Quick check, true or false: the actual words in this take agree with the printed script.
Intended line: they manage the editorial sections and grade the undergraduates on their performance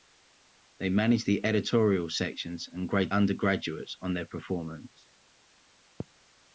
false